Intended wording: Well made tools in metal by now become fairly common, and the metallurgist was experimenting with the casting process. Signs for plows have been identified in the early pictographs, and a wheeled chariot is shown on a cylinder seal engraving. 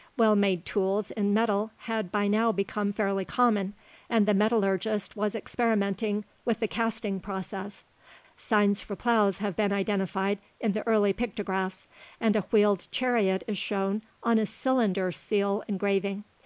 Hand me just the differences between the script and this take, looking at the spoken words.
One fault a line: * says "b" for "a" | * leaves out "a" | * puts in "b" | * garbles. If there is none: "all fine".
* puts in "had"